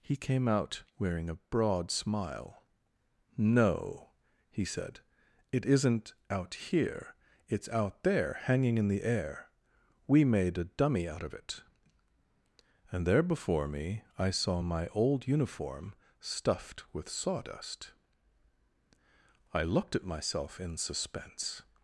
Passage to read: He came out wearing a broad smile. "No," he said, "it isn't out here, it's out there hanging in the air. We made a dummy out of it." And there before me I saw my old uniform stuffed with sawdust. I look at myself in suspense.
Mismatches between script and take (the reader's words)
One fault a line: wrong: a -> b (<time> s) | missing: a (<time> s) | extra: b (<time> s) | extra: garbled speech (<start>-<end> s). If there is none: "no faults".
wrong: look -> looked (19.6 s)